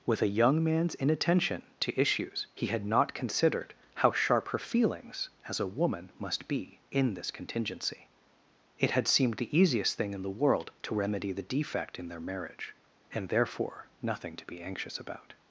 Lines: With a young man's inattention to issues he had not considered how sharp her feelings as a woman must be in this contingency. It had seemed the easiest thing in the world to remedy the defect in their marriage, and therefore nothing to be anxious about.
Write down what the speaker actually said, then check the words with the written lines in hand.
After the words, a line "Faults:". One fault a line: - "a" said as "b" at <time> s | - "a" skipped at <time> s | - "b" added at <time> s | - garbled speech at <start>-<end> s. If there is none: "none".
With a young man's inattention to issues he had not considered how sharp her feelings as a woman must be in this contingency. It had seemed the easiest thing in the world to remedy the defect in their marriage, and therefore nothing to be anxious about.
Faults:
none